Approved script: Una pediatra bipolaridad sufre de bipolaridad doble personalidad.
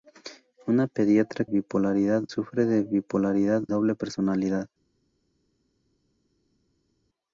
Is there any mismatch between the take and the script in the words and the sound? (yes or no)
no